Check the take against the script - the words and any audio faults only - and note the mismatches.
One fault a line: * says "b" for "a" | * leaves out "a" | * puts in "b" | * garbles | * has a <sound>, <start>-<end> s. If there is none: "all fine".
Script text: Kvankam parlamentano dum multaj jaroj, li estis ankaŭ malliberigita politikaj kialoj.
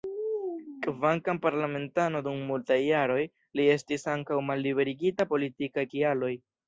all fine